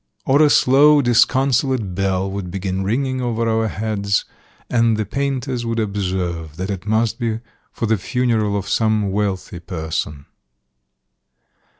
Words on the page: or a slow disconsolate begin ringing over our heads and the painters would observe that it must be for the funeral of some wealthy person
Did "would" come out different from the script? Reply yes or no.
no